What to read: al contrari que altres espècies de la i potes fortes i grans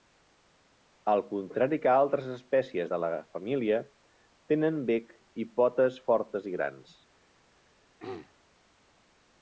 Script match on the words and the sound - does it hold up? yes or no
no